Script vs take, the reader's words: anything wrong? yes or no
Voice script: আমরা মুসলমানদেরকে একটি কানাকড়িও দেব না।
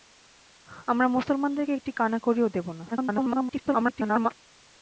yes